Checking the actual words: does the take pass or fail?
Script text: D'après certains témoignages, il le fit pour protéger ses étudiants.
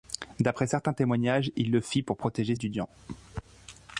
fail